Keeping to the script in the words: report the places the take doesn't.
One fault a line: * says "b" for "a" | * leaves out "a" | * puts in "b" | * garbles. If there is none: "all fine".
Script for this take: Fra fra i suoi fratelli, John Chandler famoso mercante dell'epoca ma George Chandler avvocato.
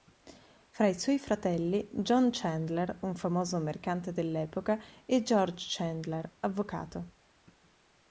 * leaves out "fra"
* puts in "un"
* says "e" for "ma"